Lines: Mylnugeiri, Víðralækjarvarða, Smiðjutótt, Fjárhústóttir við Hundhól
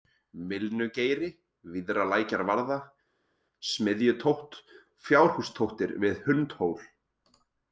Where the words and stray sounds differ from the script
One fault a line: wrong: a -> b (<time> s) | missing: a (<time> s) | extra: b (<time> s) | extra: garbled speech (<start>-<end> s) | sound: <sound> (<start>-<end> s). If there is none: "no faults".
no faults